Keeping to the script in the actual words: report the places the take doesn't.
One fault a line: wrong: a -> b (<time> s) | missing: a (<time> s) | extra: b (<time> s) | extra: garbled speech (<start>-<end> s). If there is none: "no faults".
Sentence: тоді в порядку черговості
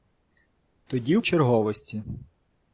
missing: порядку (1.2 s)